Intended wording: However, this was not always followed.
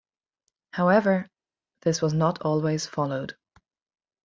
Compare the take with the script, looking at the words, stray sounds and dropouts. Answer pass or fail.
pass